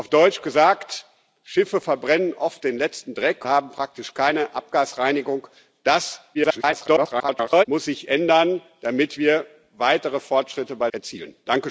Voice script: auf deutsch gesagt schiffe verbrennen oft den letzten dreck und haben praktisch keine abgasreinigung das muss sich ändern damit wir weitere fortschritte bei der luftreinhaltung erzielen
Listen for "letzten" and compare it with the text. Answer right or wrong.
right